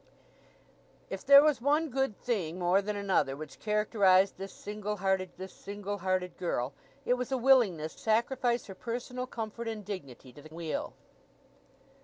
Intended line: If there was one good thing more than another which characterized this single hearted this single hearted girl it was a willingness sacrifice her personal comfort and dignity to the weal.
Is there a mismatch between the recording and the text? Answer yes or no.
no